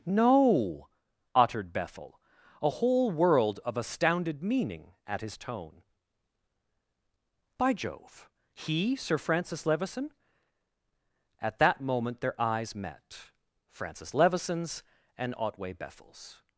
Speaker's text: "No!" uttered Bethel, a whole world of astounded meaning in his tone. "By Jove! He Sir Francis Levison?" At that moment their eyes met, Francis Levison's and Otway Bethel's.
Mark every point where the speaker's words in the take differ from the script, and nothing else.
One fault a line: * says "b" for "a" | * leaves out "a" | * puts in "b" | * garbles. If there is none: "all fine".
* says "at" for "in"